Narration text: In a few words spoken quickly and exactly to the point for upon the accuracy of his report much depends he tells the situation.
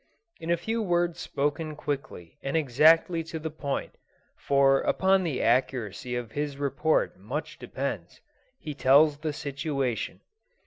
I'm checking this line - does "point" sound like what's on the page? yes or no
yes